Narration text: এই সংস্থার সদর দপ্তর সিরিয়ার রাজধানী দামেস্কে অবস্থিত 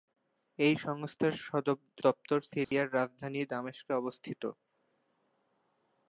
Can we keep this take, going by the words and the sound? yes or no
no